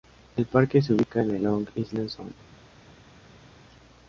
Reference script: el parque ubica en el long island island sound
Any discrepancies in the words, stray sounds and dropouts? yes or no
yes